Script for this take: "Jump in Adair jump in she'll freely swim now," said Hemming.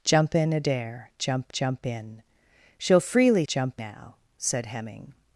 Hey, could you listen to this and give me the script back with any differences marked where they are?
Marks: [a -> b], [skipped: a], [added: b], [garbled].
"Jump in Adair jump [added: jump] in she'll freely [swim -> jump] now," said Hemming.